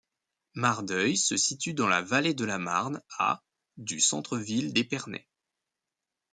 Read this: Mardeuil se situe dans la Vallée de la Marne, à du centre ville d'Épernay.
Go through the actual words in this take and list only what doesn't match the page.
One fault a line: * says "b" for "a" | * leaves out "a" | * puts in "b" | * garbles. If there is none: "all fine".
all fine